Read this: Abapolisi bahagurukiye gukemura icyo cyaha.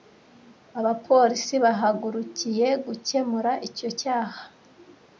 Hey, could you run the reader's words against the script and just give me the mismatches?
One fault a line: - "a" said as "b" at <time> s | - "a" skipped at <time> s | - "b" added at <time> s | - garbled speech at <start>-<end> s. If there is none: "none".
none